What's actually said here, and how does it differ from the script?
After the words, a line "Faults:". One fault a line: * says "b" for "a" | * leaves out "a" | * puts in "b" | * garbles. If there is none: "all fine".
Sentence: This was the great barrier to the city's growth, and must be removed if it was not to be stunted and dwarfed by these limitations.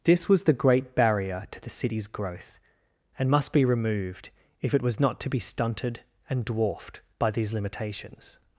This was the great barrier to the city's growth, and must be removed if it was not to be stunted and dwarfed by these limitations.
Faults:
all fine